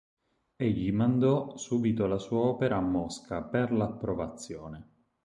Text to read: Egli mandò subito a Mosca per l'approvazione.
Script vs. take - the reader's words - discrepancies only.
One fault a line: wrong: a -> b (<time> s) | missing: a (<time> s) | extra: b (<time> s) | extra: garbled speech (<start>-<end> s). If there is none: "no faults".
extra: la sua opera (2.1 s)